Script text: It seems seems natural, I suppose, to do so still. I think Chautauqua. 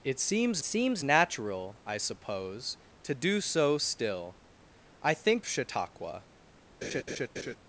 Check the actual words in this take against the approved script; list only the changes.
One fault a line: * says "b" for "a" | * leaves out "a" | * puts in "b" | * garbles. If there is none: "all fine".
all fine